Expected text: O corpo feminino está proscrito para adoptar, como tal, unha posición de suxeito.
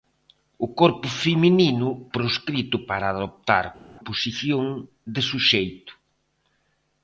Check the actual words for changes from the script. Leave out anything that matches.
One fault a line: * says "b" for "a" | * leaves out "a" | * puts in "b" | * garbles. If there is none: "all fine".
* leaves out "está"
* leaves out "como tal unha"